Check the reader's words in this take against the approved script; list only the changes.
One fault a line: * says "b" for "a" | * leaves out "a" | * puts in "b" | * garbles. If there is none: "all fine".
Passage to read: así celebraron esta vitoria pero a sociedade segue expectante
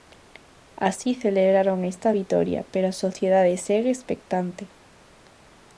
all fine